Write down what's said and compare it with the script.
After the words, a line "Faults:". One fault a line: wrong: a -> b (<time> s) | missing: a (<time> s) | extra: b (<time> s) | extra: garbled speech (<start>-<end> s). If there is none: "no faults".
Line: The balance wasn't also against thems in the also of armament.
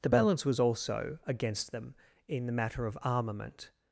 The balance was also against them in the matter of armament.
Faults:
wrong: wasn't -> was (0.5 s)
wrong: thems -> them (1.7 s)
wrong: also -> matter (2.5 s)